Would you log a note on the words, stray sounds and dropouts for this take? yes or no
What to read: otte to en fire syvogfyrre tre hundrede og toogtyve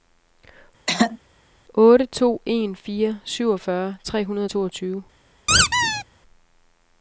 yes